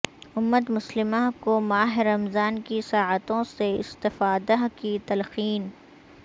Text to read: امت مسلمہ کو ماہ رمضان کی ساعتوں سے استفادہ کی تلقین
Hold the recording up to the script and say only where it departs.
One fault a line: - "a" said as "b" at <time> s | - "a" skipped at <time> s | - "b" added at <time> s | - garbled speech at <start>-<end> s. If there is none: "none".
none